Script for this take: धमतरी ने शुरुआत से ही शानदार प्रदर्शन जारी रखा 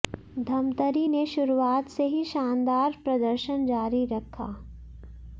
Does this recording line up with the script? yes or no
yes